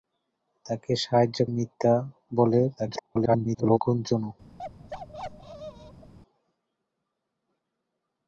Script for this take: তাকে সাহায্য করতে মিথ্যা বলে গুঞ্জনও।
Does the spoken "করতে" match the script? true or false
false